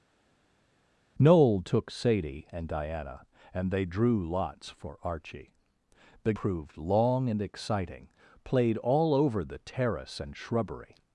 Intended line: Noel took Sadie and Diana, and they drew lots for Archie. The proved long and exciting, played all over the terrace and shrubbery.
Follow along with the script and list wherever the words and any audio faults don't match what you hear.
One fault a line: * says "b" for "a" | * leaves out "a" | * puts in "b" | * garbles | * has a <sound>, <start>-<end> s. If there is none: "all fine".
all fine